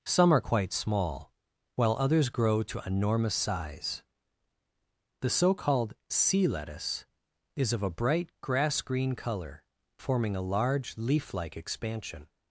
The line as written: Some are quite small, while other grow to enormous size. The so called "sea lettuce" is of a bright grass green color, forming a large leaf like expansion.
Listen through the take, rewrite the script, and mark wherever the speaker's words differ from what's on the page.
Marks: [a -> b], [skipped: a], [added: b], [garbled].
Some are quite small, while [other -> others] grow to enormous size. The so called "sea lettuce" is of a bright grass green color, forming a large leaf like expansion.